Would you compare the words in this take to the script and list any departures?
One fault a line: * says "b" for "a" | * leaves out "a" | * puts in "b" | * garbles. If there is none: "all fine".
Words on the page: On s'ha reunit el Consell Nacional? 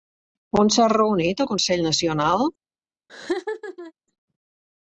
all fine